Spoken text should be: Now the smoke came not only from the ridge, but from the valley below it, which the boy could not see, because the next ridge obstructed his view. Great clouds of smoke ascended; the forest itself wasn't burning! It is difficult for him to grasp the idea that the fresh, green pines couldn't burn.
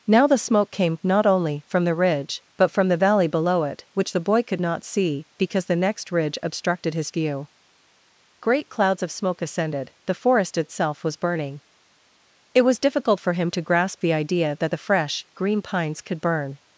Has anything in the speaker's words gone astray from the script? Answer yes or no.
yes